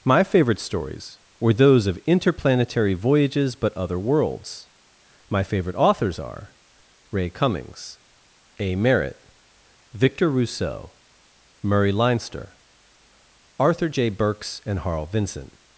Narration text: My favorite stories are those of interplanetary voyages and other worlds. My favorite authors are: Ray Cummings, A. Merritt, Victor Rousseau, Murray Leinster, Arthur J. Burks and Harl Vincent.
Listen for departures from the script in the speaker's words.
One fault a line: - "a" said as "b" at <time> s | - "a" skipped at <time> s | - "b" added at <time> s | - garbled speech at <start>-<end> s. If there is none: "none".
- "are" said as "were" at 1.4 s
- "and" said as "but" at 3.5 s